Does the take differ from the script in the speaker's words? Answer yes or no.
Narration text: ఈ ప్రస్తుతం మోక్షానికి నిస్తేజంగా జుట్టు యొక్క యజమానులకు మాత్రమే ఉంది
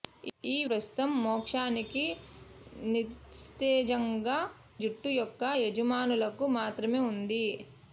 no